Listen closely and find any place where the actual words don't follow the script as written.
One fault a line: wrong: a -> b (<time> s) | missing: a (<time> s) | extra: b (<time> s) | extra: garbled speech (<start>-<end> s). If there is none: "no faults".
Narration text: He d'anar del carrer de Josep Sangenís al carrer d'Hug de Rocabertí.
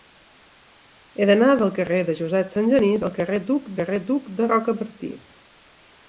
extra: carrer d'Hug (3.8 s)